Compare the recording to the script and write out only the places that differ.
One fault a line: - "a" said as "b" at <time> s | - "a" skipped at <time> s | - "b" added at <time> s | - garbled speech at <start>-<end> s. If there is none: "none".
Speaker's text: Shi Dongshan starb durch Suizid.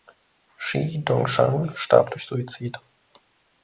none